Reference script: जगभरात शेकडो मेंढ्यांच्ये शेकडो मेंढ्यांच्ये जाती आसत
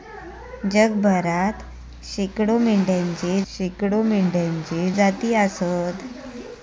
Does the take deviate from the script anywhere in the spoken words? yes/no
no